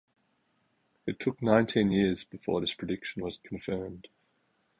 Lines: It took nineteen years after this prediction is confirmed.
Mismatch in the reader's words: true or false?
true